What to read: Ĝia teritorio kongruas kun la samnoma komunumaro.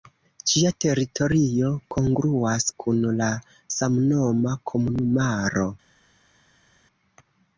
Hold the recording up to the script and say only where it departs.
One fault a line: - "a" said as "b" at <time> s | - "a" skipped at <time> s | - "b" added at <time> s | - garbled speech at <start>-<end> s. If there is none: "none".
none